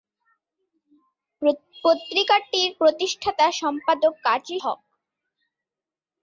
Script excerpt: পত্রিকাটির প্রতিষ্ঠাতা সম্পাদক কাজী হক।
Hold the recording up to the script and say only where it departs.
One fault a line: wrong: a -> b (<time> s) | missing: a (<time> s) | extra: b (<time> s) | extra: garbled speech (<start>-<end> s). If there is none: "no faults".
no faults